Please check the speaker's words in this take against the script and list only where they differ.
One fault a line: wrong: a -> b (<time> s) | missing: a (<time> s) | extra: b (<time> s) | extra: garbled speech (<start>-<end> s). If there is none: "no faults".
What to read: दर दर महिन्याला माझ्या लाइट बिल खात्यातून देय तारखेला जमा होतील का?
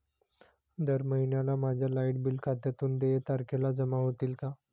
missing: दर (1.0 s)